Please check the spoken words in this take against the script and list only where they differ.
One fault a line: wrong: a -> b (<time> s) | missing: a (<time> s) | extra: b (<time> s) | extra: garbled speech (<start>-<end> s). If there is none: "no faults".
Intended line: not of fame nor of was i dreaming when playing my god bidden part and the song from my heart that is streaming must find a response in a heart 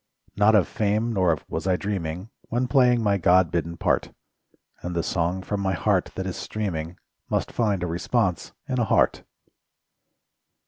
no faults